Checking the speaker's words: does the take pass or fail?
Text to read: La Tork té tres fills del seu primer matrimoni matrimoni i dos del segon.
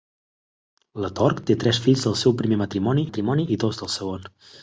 pass